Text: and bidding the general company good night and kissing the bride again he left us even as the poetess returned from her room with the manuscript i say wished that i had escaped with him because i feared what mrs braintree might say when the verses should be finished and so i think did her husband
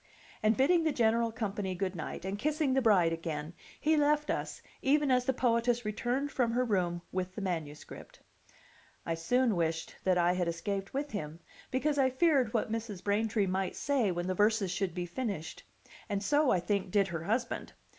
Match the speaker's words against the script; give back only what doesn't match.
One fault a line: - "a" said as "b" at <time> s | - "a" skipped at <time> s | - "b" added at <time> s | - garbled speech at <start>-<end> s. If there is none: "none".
- "say" said as "soon" at 9.1 s